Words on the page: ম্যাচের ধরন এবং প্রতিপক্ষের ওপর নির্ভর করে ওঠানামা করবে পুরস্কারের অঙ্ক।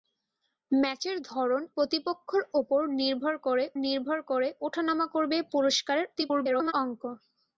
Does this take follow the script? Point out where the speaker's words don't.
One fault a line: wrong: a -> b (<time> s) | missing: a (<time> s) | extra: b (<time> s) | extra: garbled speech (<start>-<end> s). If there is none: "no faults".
missing: এবং (1.6 s)
extra: নির্ভর করে (3.8 s)
extra: garbled speech (6.2-6.7 s)